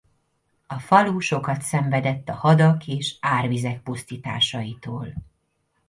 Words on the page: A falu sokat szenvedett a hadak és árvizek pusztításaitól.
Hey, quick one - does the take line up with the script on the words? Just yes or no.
yes